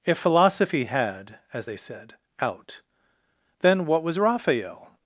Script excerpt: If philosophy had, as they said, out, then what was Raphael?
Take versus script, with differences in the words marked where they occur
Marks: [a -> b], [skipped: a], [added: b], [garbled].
If philosophy had, as they said, out, then what was Raphael?